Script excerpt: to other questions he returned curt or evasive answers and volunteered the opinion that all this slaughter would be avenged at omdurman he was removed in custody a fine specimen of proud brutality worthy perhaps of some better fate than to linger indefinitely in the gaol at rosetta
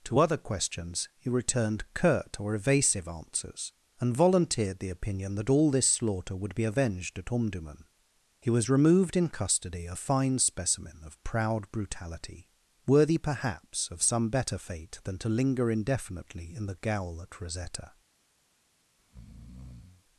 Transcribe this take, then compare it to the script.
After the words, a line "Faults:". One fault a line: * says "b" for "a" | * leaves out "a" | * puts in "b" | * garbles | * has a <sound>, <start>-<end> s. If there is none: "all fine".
to other questions he returned curt or evasive answers and volunteered the opinion that all this slaughter would be avenged at omdurman he was removed in custody a fine specimen of proud brutality worthy perhaps of some better fate than to linger indefinitely in the gaol at rosetta
Faults:
* has a breath, 19.0-20.0 s